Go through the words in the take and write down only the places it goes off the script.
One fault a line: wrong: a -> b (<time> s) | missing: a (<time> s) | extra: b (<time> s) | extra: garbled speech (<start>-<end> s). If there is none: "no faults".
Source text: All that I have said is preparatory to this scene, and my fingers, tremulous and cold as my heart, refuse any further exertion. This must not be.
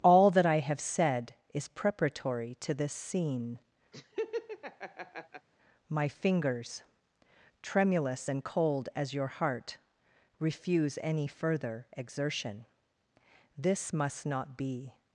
missing: and (3.6 s)
wrong: my -> your (9.1 s)